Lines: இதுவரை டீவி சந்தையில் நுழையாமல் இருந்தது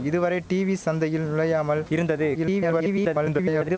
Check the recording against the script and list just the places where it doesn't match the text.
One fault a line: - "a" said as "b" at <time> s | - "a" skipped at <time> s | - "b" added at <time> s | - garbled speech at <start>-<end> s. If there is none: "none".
- garbled speech at 2.3-3.8 s